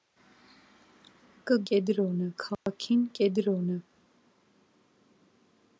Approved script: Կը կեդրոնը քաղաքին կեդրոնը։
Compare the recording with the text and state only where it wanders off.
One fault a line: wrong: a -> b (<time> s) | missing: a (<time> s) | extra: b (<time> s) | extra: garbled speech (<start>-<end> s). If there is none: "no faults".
no faults